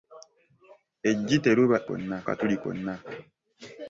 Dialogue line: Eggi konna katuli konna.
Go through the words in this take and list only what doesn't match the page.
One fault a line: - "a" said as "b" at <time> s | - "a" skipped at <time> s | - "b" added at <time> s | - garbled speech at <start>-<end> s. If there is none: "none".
none